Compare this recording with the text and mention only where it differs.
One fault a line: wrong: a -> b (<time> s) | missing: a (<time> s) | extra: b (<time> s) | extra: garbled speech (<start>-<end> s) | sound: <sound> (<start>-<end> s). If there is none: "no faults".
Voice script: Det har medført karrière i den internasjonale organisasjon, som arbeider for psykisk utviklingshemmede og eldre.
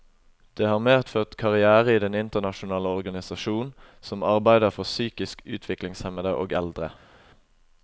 no faults